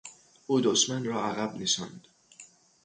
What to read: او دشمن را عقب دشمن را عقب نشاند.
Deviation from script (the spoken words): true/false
true